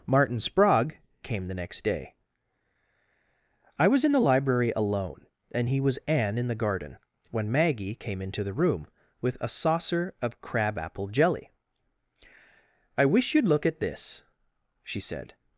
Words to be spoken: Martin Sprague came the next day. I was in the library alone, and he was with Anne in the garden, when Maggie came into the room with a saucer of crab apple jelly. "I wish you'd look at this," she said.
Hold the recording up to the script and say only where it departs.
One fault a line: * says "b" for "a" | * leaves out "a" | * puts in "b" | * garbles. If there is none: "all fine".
* leaves out "with"